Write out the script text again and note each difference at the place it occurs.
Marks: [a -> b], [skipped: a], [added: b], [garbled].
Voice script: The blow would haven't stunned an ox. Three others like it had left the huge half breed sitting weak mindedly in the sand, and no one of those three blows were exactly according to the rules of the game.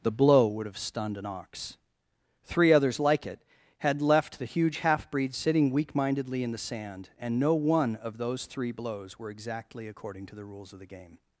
The blow would [haven't -> have] stunned an ox. Three others like it had left the huge half breed sitting weak mindedly in the sand, and no one of those three blows were exactly according to the rules of the game.